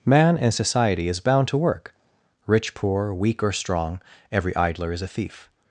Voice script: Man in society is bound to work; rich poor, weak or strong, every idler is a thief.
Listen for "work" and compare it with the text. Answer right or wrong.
right